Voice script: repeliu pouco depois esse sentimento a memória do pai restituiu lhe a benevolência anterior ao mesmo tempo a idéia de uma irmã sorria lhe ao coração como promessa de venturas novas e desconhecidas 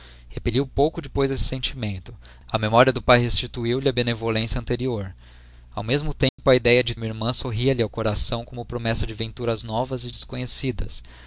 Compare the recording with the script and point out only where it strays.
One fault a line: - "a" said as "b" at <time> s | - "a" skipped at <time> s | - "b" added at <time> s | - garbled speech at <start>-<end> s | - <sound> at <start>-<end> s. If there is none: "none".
- dropout at 6.3-6.4 s